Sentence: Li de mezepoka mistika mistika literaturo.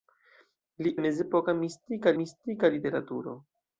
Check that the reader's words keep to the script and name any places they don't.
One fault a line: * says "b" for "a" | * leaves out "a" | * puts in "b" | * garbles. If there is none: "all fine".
all fine